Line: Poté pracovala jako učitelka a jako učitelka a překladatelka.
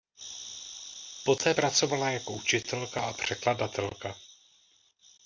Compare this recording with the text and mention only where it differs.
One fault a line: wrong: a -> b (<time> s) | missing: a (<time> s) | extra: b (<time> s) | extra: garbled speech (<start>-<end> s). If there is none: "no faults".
missing: jako učitelka a (3.1 s)